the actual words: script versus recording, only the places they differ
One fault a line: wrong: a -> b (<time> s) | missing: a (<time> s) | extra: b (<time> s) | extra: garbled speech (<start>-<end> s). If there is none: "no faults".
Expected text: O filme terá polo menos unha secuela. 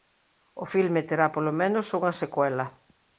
no faults